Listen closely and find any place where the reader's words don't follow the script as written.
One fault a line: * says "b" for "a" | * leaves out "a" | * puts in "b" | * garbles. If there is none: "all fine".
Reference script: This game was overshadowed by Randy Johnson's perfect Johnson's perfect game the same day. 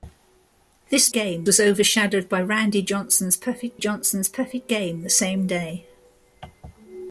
all fine